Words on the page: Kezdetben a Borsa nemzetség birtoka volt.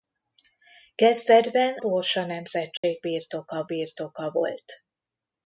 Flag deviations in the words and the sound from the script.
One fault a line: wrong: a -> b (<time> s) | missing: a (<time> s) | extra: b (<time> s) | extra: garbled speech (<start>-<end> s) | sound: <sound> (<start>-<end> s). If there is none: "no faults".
missing: a (1.8 s)
sound: dropout (2.8-2.8 s)
extra: birtoka (3.7 s)